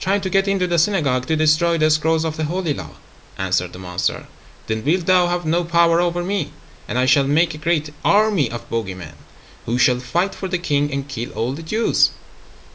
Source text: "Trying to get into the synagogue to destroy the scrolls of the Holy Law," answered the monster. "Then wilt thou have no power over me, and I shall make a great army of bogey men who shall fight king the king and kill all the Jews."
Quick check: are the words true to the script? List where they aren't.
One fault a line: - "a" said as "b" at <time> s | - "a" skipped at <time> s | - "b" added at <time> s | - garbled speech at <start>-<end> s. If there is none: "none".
- "king" said as "for" at 10.3 s